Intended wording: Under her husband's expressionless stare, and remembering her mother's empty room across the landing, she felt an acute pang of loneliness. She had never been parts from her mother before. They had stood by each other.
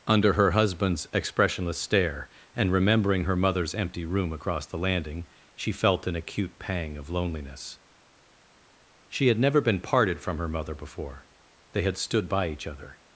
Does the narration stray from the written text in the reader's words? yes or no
yes